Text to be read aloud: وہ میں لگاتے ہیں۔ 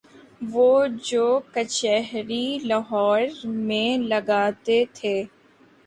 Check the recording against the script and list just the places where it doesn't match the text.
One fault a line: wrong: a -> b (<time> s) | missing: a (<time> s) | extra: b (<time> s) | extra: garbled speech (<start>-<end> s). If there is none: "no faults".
extra: جو کچہری لاہور (1.0 s)
wrong: ہیں -> تھے (4.9 s)